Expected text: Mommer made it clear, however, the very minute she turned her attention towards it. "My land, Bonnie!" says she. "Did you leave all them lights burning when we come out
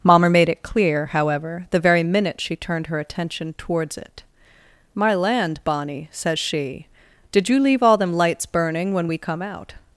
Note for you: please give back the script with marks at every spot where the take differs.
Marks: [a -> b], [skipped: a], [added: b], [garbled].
Mommer made it clear, however, the very minute she turned her attention towards it. "My land, Bonnie!" says she. "Did you leave all them lights burning when we come out